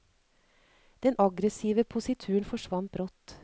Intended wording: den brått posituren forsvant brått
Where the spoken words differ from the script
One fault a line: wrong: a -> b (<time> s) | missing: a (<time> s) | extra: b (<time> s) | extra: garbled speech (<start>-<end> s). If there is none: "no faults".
wrong: brått -> aggressive (1.3 s)